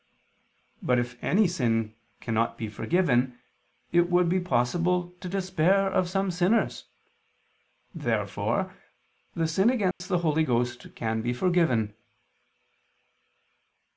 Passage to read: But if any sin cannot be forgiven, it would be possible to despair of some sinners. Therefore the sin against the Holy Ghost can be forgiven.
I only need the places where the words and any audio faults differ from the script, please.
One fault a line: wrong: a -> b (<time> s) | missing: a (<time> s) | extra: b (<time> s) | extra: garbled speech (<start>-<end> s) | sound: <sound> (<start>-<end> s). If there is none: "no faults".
sound: dropout (9.9-10.0 s)